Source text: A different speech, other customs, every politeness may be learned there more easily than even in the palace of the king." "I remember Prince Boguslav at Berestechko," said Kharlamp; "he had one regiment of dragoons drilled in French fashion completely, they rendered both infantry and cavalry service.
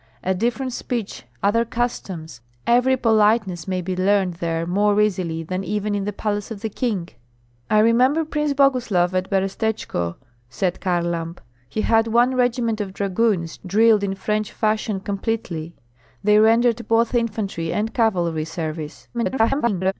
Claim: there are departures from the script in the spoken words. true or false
true